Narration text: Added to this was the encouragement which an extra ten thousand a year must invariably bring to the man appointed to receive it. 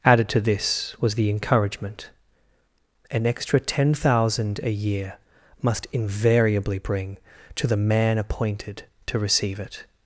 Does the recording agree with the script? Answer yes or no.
no